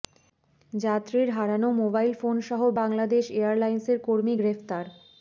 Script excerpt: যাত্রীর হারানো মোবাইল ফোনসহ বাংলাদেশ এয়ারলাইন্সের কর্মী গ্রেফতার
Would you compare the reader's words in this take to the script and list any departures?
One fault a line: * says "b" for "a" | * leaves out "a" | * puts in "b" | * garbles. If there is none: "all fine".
all fine